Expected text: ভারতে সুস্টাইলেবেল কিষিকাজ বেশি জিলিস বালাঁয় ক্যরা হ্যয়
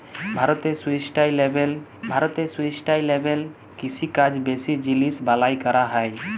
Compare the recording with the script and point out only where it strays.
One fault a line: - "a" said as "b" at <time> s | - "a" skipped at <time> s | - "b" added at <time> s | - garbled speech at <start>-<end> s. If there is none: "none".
- "ভারতে সুস্টাইলেবেল" added at 2.1 s